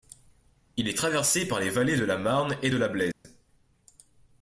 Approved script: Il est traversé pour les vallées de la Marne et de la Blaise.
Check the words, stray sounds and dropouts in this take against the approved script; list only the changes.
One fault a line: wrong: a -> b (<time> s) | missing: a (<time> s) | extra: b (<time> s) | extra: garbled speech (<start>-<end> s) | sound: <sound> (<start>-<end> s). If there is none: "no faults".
wrong: pour -> par (1.5 s)
sound: dropout (3.1-3.2 s)